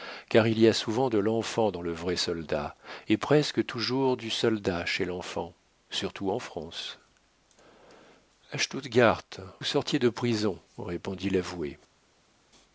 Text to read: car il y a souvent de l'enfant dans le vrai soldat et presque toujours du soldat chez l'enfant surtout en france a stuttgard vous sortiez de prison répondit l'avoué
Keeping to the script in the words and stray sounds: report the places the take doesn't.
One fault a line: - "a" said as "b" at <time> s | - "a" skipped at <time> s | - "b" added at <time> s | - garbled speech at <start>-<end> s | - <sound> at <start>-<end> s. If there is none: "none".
- "vous" skipped at 9.2 s